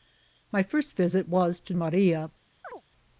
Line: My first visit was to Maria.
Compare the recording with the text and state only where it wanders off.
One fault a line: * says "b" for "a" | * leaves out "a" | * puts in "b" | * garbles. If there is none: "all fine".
all fine